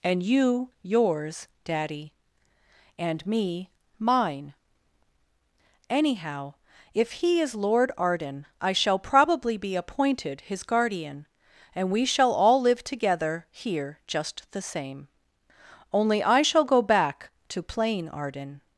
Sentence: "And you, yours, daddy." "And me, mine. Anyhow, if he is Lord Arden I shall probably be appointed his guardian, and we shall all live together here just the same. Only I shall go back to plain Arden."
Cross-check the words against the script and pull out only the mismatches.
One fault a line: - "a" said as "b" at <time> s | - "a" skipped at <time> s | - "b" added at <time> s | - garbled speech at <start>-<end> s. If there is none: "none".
none